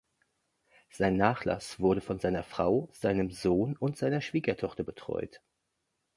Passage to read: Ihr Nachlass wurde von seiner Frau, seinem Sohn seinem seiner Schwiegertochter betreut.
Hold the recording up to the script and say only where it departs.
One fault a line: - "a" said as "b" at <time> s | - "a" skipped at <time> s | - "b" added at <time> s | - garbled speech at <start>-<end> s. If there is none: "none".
- "Ihr" said as "Sein" at 0.9 s
- "seinem" said as "und" at 3.8 s